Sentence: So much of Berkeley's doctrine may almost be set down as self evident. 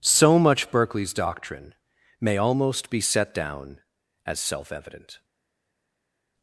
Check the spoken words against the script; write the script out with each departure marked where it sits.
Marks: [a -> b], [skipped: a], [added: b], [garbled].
So much [skipped: of] Berkeley's doctrine may almost be set down as self evident.